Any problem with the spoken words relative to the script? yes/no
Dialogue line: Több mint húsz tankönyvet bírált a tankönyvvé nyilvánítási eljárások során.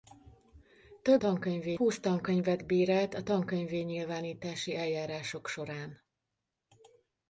yes